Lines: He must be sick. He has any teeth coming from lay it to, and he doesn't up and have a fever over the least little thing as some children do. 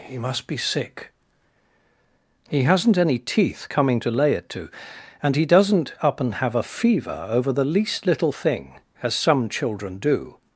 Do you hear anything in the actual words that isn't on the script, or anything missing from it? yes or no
yes